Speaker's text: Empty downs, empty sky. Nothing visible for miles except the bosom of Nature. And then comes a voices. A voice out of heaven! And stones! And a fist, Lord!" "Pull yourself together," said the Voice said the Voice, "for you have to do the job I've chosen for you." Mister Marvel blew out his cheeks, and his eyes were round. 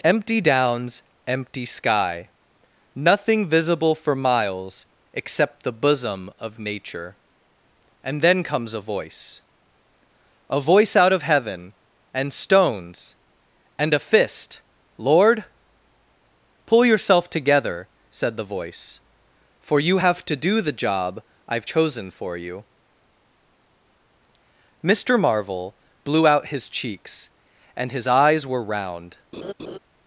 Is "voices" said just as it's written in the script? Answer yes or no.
no